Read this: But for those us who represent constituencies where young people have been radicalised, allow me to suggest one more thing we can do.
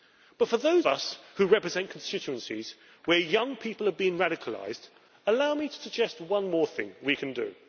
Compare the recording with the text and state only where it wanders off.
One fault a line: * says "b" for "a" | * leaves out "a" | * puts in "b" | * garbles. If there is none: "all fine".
all fine